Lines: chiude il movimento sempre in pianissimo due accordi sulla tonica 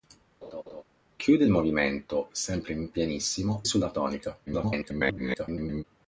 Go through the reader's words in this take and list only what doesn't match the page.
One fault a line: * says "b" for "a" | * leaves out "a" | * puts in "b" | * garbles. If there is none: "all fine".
* leaves out "due accordi"
* garbles